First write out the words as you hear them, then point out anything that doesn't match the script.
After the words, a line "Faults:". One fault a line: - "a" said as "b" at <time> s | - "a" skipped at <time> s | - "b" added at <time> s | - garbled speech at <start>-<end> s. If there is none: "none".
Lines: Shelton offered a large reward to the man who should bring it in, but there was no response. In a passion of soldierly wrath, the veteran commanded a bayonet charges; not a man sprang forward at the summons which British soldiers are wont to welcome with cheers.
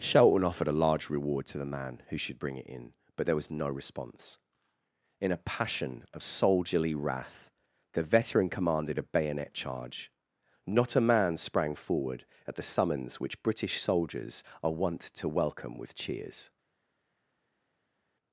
Shelton offered a large reward to the man who should bring it in, but there was no response. In a passion of soldierly wrath, the veteran commanded a bayonet charge; not a man sprang forward at the summons which British soldiers are wont to welcome with cheers.
Faults:
- "charges" said as "charge" at 9.5 s